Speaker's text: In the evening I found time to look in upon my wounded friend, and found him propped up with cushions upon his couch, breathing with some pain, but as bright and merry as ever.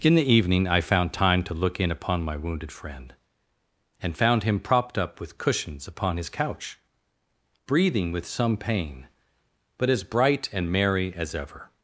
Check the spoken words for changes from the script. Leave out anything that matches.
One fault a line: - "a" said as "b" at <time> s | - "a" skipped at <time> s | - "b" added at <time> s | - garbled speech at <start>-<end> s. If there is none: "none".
none